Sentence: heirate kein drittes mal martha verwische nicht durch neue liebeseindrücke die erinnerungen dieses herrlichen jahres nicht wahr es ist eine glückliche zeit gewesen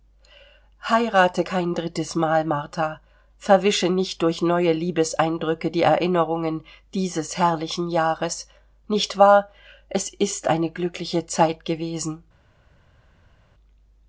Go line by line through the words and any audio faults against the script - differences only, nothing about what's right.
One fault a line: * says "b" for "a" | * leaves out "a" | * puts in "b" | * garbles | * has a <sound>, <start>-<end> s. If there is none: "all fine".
all fine